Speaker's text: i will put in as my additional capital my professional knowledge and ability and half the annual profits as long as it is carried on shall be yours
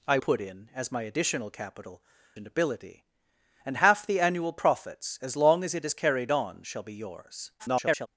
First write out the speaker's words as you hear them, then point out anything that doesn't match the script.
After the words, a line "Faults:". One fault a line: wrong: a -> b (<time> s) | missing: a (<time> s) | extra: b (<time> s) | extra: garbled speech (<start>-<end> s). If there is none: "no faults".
i put in as my additional capital and ability and half the annual profits as long as it is carried on shall be yours [garbled]
Faults:
missing: will (0.2 s)
missing: my professional knowledge (2.0 s)
extra: garbled speech (7.6-8.1 s)